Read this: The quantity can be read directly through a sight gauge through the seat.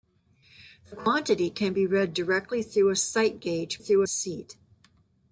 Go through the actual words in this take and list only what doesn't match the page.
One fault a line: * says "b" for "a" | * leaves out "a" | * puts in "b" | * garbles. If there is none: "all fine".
all fine